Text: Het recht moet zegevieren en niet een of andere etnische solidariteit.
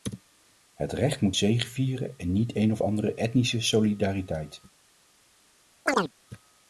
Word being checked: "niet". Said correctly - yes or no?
yes